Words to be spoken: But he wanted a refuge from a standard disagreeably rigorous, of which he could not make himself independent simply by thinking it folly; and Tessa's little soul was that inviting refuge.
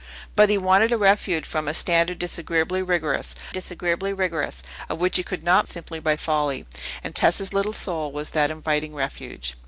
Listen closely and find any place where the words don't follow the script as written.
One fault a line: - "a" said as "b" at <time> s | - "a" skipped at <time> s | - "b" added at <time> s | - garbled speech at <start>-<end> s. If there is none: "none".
- "disagreeably rigorous" added at 3.5 s
- "make himself independent" skipped at 5.7 s
- "thinking it" skipped at 6.2 s